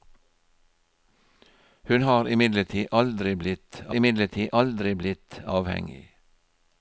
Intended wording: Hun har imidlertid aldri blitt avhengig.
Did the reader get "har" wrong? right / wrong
right